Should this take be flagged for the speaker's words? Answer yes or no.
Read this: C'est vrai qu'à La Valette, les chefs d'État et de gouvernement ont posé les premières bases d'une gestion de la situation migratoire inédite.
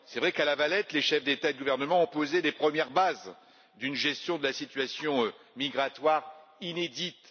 no